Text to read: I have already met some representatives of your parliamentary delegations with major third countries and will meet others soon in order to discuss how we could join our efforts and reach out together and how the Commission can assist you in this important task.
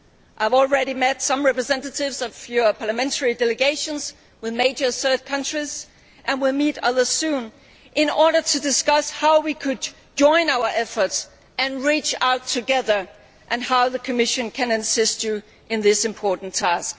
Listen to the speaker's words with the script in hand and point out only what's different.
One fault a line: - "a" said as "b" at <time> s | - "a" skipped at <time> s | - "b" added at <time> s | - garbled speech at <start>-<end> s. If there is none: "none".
none